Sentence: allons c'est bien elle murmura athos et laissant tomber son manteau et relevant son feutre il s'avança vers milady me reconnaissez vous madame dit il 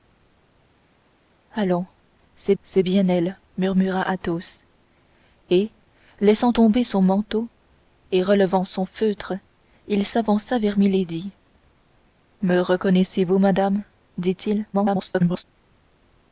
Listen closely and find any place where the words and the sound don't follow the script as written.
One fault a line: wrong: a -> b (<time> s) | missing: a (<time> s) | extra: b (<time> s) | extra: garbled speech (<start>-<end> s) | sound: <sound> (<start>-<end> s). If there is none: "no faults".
extra: c'est (2.6 s)
extra: garbled speech (14.7-15.4 s)